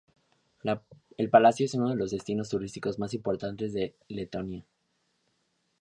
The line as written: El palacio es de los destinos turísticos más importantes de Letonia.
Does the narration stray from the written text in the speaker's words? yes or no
yes